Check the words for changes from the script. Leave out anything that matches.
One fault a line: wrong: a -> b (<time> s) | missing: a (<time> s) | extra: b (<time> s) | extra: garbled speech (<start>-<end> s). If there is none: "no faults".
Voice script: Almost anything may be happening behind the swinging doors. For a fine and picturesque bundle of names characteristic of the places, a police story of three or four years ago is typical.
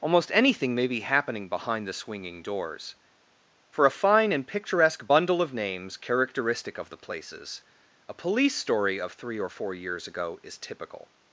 no faults